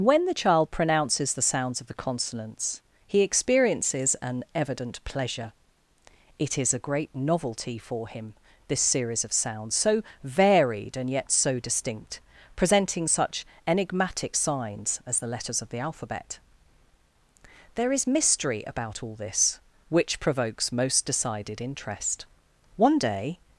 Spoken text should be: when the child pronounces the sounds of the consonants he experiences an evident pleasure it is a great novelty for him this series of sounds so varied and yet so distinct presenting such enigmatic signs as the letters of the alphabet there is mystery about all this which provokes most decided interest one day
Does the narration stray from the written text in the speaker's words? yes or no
no